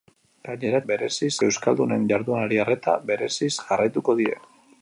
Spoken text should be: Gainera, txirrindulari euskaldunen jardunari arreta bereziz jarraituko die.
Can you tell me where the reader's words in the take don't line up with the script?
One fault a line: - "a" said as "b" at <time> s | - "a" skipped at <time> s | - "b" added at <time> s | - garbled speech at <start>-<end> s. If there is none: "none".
- "txirrindulari" said as "bereziz" at 0.9 s